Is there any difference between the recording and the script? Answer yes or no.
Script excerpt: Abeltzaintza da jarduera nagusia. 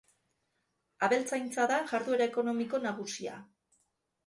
yes